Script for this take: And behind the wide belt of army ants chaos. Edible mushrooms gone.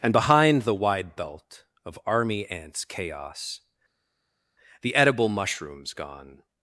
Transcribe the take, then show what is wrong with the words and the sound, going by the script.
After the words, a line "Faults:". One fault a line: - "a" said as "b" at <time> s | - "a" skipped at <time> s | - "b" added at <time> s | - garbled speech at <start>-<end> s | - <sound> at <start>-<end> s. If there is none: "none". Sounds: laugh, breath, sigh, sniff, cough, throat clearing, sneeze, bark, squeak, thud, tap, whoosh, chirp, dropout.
And behind the wide belt of army ants chaos. The edible mushrooms gone.
Faults:
- "The" added at 4.8 s